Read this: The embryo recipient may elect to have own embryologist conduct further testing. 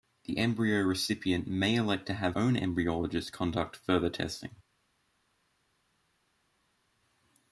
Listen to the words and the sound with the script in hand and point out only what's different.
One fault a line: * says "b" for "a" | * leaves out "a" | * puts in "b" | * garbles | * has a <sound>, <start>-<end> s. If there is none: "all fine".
all fine